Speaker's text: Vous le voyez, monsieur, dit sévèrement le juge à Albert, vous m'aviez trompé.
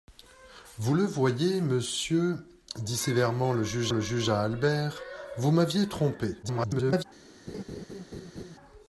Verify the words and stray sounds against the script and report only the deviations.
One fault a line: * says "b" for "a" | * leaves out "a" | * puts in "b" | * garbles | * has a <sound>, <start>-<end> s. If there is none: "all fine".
* puts in "le juge"
* garbles
* has a laugh, 7.5-8.6 s